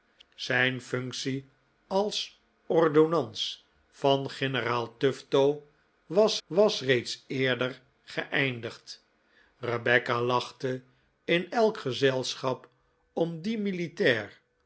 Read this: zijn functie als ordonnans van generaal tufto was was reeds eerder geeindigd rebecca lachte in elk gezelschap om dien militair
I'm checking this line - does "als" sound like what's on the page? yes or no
yes